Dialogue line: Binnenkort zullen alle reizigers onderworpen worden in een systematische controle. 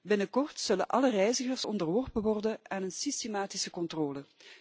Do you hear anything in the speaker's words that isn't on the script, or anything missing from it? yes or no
yes